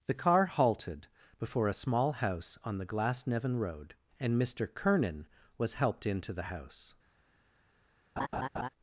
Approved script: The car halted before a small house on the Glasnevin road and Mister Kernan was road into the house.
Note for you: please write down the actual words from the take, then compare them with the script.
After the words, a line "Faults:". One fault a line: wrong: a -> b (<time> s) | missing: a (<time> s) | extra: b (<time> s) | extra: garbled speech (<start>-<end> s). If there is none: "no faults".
The car halted before a small house on the Glasnevin road and Mister Kernan was helped into the house.
Faults:
wrong: road -> helped (5.8 s)